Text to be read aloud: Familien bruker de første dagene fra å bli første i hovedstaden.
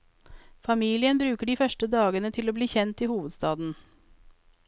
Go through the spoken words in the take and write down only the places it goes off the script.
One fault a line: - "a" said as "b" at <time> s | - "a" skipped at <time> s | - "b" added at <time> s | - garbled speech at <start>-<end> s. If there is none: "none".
- "fra" said as "til" at 2.4 s
- "første" said as "kjent" at 2.7 s